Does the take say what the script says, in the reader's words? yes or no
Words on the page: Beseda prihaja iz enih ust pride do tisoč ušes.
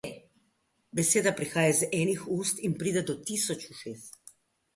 no